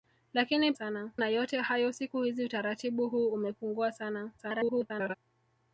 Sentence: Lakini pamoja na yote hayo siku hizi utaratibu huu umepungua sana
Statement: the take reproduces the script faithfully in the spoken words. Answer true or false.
false